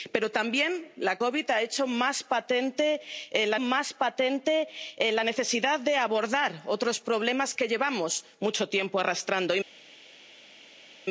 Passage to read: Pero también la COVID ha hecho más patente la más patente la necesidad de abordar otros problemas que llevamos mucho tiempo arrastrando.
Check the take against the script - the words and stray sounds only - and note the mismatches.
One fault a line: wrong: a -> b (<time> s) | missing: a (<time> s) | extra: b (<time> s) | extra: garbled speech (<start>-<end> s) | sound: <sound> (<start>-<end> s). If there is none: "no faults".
no faults